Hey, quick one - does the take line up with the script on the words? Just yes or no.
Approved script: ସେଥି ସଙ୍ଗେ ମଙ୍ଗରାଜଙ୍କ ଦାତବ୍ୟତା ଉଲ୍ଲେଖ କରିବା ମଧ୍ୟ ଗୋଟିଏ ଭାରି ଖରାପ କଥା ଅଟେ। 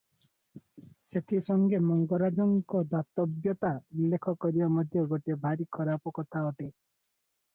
yes